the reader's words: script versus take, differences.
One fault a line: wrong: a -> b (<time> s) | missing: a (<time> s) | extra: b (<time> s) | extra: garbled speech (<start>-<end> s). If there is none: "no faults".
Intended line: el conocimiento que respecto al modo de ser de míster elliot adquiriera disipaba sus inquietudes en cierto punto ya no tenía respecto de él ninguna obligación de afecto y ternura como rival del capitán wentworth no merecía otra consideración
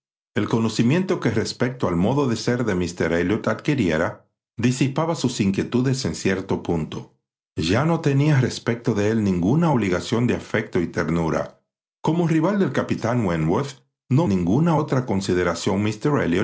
wrong: merecía -> ninguna (14.3 s)